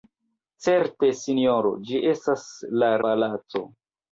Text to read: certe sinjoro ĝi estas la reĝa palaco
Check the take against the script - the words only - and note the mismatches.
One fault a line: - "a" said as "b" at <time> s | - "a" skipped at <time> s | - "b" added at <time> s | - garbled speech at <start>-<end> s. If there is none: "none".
- "reĝa" skipped at 2.9 s